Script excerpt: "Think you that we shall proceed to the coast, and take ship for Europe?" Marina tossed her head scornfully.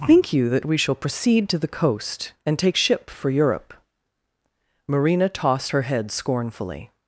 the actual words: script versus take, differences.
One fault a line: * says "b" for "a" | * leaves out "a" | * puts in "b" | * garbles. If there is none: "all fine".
all fine